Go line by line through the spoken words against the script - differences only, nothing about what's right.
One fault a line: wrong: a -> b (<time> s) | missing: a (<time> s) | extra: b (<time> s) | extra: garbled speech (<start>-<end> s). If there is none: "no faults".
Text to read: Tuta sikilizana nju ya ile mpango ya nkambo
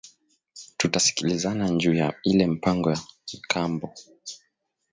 no faults